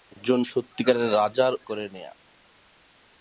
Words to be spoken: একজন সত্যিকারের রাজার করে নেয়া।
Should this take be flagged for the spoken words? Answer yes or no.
no